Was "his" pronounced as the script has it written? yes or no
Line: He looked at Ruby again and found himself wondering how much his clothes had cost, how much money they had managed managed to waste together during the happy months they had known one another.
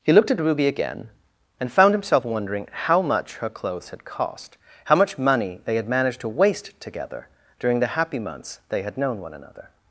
no